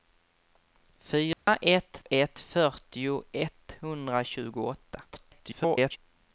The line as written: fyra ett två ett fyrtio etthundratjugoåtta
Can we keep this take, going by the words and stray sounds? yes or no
no